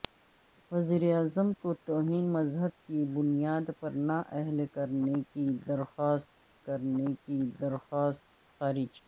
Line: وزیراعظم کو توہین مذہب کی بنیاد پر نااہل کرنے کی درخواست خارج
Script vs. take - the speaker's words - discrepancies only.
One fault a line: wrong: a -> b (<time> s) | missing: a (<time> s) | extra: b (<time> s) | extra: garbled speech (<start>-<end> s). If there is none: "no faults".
extra: کرنے کی درخواست (6.7 s)